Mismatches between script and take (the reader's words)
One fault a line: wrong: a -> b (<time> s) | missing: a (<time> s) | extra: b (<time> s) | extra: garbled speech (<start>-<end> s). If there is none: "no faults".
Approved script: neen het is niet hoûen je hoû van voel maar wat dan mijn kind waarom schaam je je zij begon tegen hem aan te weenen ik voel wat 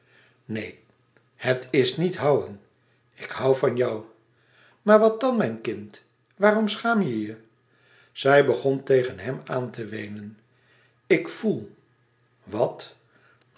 wrong: je -> ik (3.1 s)
wrong: voel -> jou (3.8 s)